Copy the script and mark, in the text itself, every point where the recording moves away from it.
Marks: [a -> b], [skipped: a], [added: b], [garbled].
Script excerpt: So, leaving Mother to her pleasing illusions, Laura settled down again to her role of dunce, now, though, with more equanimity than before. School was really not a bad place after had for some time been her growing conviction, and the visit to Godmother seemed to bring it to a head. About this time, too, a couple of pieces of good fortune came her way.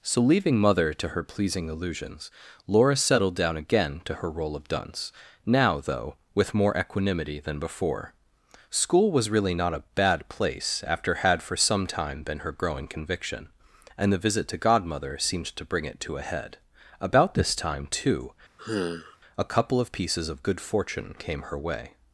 So, leaving Mother to her pleasing illusions, Laura settled down again to her role of dunce, now, though, with more equanimity than before. School was really not a bad place after had for some time been her growing conviction, and the visit to Godmother seemed to bring it to a head. About this time, too, a couple of pieces of good fortune came her way.